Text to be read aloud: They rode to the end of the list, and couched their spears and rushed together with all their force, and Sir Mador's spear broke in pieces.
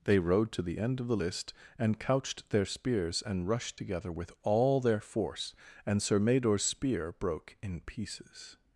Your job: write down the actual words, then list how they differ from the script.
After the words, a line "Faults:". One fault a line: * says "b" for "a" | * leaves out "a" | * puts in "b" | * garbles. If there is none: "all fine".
They rode to the end of the list, and couched their spears and rushed together with all their force, and Sir Mador's spear broke in pieces.
Faults:
all fine